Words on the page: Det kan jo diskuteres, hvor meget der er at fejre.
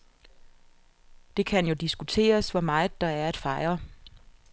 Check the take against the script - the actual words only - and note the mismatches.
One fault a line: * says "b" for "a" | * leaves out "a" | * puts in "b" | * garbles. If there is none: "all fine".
all fine